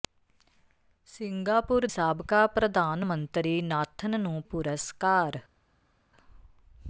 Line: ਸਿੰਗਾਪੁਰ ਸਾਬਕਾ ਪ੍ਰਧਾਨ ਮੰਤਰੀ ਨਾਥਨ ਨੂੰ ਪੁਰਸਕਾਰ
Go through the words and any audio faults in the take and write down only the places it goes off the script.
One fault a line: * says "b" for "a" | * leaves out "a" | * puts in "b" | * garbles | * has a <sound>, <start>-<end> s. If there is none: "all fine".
all fine